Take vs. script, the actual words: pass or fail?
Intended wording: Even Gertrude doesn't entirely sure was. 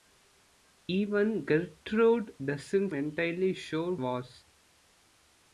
pass